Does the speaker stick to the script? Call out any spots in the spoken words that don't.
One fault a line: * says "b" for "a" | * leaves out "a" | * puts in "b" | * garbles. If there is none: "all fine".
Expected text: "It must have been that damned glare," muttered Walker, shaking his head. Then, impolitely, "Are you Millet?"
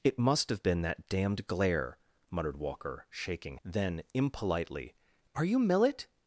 * leaves out "his head"